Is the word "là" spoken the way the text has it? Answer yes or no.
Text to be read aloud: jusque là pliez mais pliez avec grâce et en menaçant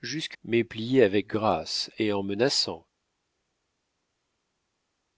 no